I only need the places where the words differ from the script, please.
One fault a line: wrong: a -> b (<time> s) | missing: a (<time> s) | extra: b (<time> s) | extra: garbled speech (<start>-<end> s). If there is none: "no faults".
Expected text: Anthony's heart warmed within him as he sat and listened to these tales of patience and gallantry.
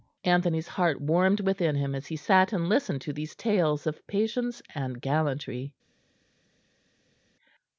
no faults